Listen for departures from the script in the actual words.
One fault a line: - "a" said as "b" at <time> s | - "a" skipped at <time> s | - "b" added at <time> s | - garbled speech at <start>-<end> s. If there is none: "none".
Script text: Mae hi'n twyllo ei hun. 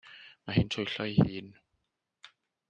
none